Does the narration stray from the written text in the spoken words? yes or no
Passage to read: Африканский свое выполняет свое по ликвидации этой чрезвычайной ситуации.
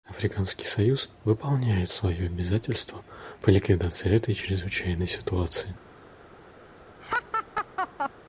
yes